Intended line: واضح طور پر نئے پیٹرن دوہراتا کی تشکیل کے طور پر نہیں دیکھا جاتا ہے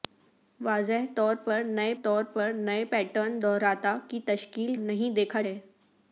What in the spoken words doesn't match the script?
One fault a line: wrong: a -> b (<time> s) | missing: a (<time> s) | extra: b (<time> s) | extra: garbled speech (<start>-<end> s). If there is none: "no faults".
extra: طور پر نئے (2.0 s)
missing: کے طور پر (4.7 s)
missing: جاتا (5.4 s)